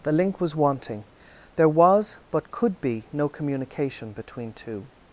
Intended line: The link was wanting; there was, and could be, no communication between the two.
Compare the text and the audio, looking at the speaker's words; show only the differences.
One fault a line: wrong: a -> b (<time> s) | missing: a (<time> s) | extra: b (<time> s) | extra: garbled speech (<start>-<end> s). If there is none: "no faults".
wrong: and -> but (2.3 s)
missing: the (4.5 s)